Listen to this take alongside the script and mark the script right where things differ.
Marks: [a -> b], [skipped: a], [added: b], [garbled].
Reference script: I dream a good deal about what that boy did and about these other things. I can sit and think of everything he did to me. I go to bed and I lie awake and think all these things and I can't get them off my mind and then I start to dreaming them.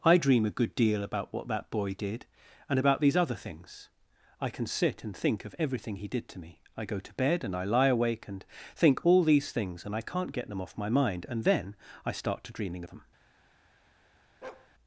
I dream a good deal about what that boy did and about these other things. I can sit and think of everything he did to me. I go to bed and I lie awake and think all these things and I can't get them off my mind and then I start to dreaming them.